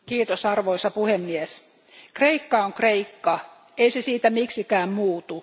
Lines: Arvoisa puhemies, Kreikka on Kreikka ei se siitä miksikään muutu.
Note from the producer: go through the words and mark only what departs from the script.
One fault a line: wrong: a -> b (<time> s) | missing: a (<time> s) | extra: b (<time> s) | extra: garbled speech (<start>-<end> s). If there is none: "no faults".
no faults